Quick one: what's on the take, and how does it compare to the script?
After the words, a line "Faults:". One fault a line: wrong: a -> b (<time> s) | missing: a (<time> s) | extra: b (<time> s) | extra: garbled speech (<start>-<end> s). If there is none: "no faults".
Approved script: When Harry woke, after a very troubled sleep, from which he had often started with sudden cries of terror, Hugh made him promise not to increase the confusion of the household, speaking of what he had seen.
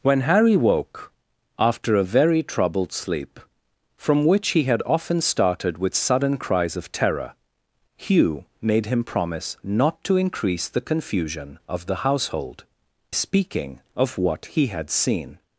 When Harry woke, after a very troubled sleep, from which he had often started with sudden cries of terror, Hugh made him promise not to increase the confusion of the household, speaking of what he had seen.
Faults:
no faults